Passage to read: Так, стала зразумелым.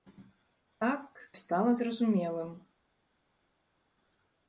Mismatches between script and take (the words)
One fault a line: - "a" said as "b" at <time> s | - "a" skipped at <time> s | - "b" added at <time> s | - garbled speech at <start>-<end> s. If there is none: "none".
none